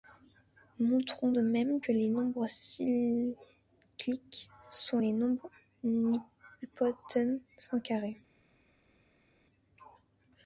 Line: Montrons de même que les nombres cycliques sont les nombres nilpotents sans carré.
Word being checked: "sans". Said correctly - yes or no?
yes